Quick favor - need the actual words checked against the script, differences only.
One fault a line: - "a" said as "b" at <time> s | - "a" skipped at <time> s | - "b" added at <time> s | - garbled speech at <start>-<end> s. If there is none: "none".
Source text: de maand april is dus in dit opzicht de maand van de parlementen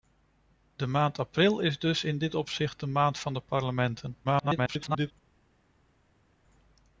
- garbled speech at 4.2-5.1 s